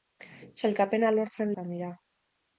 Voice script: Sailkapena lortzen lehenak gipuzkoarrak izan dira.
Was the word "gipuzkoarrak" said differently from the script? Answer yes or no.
yes